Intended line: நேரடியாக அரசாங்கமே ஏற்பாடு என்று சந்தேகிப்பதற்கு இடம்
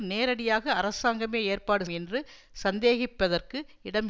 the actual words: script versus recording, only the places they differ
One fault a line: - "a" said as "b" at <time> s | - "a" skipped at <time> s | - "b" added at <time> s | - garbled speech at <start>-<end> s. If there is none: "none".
none